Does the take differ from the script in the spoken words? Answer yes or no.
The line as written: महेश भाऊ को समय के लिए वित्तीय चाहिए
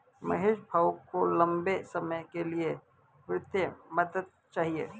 yes